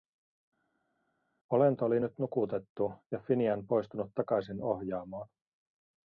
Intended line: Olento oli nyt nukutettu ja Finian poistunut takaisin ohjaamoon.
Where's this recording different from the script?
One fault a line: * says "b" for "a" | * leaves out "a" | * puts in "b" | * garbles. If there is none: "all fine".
all fine